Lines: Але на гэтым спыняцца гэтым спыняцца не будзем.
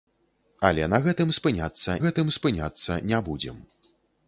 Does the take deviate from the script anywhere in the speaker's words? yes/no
no